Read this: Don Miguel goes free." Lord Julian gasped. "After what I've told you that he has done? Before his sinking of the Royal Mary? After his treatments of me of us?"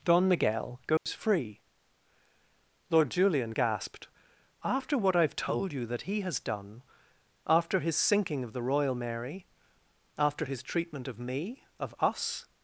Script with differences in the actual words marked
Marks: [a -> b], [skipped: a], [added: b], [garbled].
Don Miguel goes free." Lord Julian gasped. "After what I've told you that he has done? [Before -> After] his sinking of the Royal Mary? After his [treatments -> treatment] of me of us?"